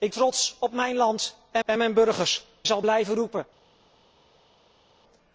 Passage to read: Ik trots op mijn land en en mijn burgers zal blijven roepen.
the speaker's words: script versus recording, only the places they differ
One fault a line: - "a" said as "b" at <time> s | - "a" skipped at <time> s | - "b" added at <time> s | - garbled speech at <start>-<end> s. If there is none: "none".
none